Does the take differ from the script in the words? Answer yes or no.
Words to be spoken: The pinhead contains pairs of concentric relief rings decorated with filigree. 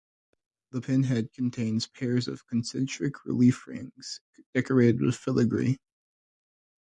no